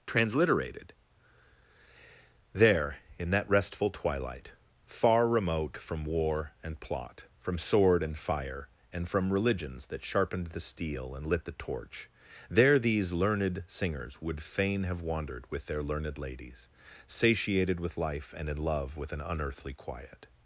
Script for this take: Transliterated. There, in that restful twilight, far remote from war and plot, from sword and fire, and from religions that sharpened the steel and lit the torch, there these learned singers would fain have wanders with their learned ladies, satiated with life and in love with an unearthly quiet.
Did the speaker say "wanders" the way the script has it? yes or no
no